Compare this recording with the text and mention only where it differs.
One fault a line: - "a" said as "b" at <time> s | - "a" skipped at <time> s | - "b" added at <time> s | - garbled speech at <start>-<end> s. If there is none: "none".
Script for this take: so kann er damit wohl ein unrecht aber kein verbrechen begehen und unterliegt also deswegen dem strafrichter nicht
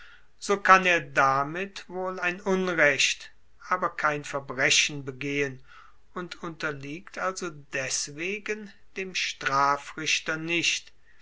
none